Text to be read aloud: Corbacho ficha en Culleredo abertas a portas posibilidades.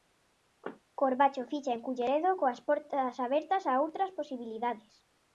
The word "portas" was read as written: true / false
false